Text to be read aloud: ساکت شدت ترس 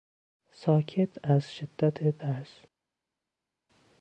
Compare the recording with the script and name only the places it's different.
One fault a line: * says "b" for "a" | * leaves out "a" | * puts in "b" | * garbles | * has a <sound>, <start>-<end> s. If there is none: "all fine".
* puts in "از"